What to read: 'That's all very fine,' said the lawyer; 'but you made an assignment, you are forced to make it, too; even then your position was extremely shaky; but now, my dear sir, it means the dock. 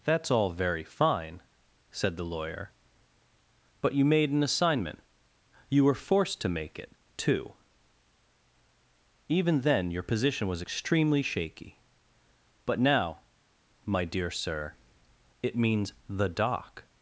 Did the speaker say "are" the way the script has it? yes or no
no